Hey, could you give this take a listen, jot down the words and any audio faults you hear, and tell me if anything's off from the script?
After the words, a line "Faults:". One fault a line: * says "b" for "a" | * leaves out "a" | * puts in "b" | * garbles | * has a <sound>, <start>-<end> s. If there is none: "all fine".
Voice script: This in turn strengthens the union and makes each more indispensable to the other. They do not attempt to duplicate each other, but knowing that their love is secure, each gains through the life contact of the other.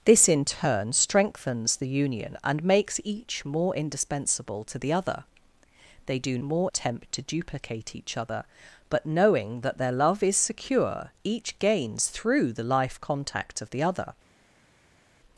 This in turn strengthens the union and makes each more indispensable to the other. They do more attempt to duplicate each other, but knowing that their love is secure, each gains through the life contact of the other.
Faults:
* says "more" for "not"